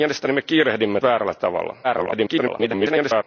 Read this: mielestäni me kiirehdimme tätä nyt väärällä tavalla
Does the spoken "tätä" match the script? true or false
false